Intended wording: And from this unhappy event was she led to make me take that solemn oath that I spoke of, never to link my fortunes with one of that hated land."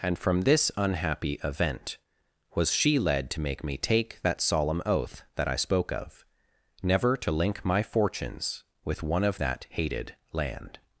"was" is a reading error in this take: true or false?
false